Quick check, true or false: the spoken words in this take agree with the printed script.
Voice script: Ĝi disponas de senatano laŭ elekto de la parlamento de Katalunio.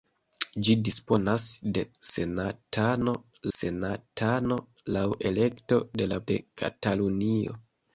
false